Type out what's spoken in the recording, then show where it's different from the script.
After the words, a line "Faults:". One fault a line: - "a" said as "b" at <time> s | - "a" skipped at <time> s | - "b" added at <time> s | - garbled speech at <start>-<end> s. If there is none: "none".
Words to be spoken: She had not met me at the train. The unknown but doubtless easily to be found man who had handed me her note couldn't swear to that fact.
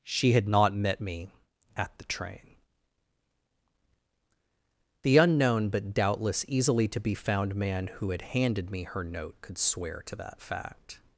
She had not met me at the train. The unknown but doubtless easily to be found man who had handed me her note could swear to that fact.
Faults:
- "couldn't" said as "could" at 9.4 s